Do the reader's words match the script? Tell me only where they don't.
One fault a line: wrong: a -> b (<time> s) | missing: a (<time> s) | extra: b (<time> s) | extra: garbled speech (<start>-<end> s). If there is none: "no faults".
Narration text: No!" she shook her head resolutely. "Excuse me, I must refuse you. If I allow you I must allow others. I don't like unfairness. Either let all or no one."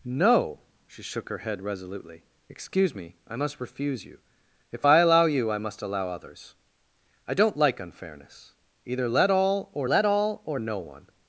extra: let all or (9.9 s)